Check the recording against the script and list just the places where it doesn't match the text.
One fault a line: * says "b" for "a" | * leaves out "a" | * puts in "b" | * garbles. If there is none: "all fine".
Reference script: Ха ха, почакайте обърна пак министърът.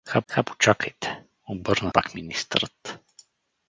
all fine